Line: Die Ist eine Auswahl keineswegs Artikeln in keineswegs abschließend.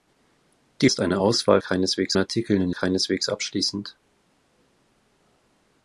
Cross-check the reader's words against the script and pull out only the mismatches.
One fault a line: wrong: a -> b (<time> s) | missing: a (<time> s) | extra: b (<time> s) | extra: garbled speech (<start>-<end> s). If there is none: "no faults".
no faults